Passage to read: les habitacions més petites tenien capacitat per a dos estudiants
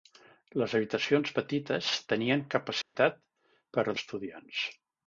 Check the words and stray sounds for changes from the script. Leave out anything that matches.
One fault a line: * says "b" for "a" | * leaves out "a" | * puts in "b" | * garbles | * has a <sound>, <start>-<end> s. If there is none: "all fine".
* leaves out "més"
* has a dropout, 2.8-3.0 s
* leaves out "dos"